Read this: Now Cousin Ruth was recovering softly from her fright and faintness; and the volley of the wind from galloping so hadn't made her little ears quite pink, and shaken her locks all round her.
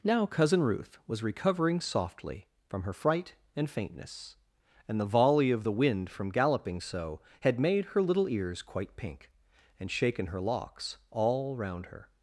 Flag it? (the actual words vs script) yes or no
yes